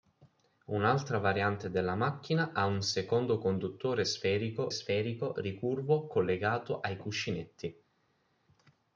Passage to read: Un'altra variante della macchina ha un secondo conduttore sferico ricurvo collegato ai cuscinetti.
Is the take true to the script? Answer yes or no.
no